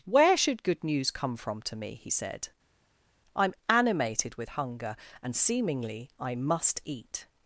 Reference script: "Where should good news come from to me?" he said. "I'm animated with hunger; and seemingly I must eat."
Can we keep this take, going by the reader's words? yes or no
yes